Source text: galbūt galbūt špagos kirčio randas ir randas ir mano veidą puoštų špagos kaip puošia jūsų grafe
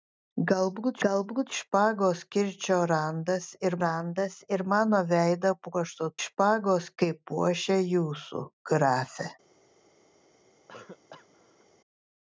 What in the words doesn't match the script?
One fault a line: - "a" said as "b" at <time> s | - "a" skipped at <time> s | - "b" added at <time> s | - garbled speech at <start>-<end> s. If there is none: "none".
none